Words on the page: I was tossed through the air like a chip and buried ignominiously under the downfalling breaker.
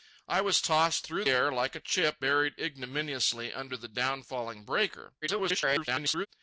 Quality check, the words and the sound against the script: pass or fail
fail